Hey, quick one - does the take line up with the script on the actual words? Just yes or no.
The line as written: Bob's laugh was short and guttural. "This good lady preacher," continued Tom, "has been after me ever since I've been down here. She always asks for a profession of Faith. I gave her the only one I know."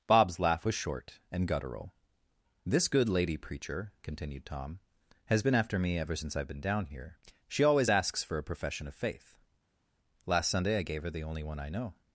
no